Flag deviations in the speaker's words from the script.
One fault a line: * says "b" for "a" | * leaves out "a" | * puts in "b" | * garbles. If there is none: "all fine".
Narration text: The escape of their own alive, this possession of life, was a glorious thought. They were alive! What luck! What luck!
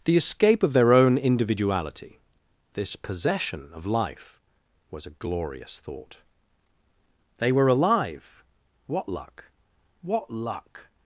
* says "individuality" for "alive"